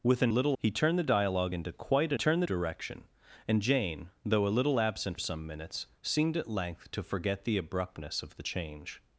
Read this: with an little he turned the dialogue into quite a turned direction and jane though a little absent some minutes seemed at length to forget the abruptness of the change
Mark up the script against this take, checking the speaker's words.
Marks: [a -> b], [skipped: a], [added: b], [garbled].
with an little he turned the dialogue into quite a turned direction and jane though a little absent some minutes seemed at length to forget the abruptness of the change